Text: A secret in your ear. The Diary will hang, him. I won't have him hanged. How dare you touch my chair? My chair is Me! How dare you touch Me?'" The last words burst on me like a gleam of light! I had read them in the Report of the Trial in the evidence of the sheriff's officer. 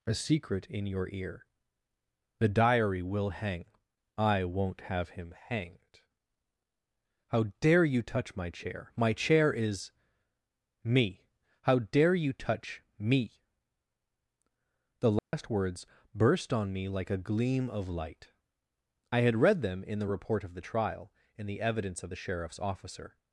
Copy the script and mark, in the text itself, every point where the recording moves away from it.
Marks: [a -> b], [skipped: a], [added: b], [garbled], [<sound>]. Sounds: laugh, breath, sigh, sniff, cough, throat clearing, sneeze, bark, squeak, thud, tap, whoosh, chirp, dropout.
A secret in your ear. The Diary will hang, [skipped: him.] I won't have him hanged. How dare you touch my chair? My chair is Me! How dare you touch Me?'" The last [dropout] words burst on me like a gleam of light! I had read them in the Report of the Trial in the evidence of the sheriff's officer.